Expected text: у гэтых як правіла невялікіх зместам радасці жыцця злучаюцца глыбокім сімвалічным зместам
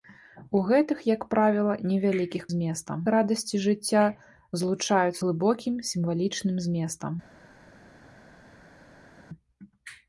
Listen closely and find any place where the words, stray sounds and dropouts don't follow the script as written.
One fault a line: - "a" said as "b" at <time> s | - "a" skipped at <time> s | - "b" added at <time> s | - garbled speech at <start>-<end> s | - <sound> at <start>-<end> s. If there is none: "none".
none